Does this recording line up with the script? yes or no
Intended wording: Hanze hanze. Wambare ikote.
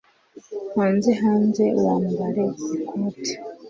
yes